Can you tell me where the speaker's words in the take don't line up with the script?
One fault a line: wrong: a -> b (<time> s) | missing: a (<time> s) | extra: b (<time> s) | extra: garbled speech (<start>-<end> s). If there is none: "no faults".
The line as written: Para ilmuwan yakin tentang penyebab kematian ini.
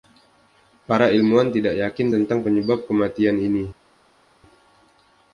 extra: tidak (1.5 s)